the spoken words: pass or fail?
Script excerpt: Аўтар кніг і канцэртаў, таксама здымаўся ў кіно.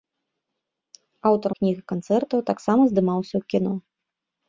pass